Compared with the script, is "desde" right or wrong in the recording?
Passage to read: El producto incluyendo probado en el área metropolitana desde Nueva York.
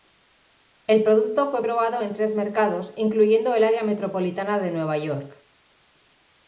wrong